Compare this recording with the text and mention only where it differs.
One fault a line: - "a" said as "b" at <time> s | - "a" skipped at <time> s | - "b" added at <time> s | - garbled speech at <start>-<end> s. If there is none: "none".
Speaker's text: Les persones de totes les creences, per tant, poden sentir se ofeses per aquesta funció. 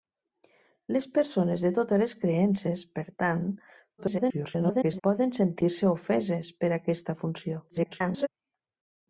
- garbled speech at 4.0-5.0 s
- garbled speech at 7.7-8.3 s